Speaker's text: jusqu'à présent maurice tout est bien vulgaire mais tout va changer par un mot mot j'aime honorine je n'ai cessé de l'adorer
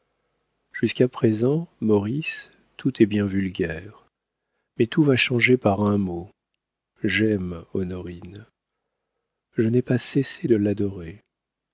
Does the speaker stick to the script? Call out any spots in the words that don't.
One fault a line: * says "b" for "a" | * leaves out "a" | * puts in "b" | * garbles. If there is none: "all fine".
* leaves out "mot"
* puts in "pas"